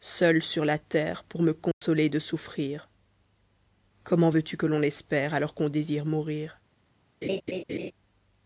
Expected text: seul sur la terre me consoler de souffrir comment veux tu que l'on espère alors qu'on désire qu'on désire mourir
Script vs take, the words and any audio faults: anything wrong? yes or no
yes